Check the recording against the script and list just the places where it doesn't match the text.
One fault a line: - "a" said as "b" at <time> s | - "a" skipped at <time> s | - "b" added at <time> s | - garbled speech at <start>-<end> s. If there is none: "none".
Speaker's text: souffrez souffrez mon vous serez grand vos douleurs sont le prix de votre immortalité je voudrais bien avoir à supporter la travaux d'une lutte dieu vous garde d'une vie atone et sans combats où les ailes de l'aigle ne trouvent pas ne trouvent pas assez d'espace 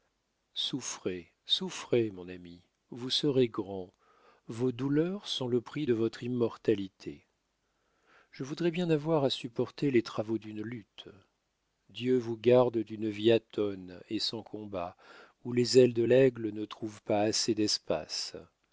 - "ami" added at 2.3 s
- "la" said as "les" at 9.9 s
- "ne trouvent pas" skipped at 17.2 s